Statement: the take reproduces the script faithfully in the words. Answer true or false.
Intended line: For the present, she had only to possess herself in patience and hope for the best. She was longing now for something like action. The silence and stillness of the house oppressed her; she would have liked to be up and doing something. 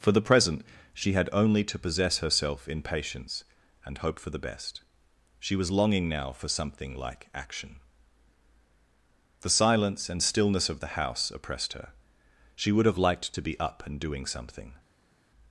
true